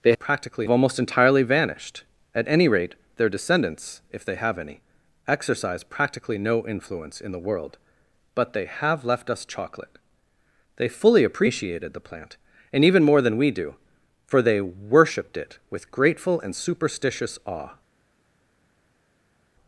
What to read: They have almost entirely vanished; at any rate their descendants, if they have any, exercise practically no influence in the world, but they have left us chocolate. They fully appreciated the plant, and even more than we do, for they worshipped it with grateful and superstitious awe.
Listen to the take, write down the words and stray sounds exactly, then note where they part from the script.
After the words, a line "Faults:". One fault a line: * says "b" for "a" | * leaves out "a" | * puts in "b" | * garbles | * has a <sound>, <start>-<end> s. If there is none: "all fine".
They practically almost entirely vanished; at any rate their descendants, if they have any, exercise practically no influence in the world, but they have left us chocolate. They fully appreciated the plant, and even more than we do, for they worshipped it with grateful and superstitious awe.
Faults:
* says "practically" for "have"